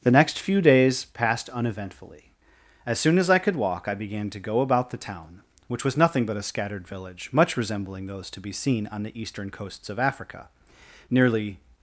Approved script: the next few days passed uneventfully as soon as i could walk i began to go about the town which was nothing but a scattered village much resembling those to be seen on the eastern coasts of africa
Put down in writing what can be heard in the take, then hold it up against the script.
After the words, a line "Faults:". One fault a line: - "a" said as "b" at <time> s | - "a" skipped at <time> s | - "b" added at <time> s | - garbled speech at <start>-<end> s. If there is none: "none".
the next few days passed uneventfully as soon as i could walk i began to go about the town which was nothing but a scattered village much resembling those to be seen on the eastern coasts of africa nearly
Faults:
- "nearly" added at 11.1 s